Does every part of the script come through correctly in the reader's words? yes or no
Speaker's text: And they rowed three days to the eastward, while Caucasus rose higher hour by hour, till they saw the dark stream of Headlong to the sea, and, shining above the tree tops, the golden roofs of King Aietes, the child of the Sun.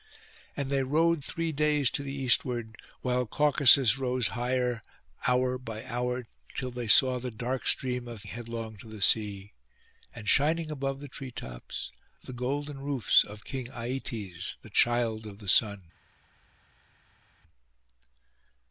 yes